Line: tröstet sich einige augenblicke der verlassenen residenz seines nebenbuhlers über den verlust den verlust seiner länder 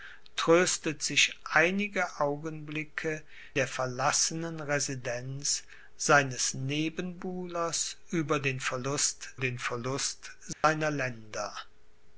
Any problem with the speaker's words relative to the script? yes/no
no